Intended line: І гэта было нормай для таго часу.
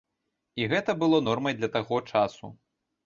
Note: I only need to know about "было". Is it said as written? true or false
true